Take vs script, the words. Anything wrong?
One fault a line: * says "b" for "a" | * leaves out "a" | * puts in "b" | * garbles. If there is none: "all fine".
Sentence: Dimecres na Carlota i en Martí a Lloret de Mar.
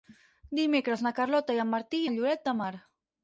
all fine